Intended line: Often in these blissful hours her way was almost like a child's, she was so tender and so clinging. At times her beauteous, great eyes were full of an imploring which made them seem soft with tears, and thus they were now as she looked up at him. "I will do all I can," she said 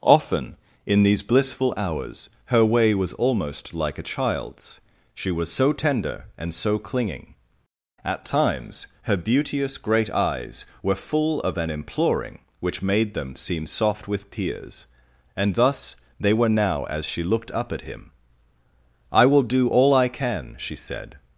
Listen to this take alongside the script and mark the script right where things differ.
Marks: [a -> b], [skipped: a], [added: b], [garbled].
Often in these blissful hours her way was almost like a child's, she was so tender and so clinging. At times her beauteous, great eyes were full of an imploring which made them seem soft with tears, and thus they were now as she looked up at him. "I will do all I can," she said